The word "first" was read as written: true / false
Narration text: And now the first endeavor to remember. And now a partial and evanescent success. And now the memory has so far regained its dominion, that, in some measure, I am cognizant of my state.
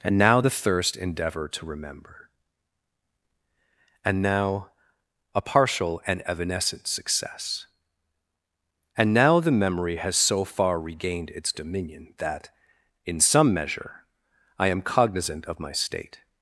false